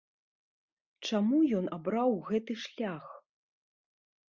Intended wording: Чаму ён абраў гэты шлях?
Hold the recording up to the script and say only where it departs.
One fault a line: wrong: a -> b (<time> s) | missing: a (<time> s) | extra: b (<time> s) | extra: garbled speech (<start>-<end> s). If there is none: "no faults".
no faults